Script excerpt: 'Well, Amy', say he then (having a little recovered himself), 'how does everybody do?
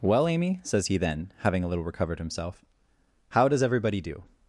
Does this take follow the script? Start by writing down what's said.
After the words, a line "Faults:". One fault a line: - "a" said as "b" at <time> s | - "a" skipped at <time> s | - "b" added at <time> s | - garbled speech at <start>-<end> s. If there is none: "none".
'Well, Amy', says he then (having a little recovered himself), 'how does everybody do?
Faults:
- "say" said as "says" at 0.6 s